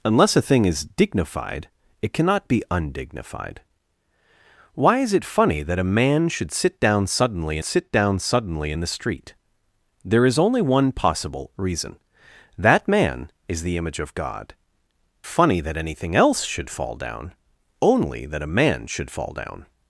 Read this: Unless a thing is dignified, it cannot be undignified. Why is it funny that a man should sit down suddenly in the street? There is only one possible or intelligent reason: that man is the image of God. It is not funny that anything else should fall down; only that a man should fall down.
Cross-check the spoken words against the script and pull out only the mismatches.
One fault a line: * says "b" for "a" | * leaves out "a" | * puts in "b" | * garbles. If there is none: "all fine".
* puts in "sit down suddenly"
* leaves out "or intelligent"
* leaves out "It is not"